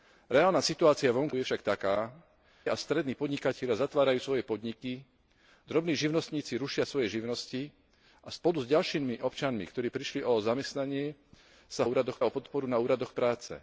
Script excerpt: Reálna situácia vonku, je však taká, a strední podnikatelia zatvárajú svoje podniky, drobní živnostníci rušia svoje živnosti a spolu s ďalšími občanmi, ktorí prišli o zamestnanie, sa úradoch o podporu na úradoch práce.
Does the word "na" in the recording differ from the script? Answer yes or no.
no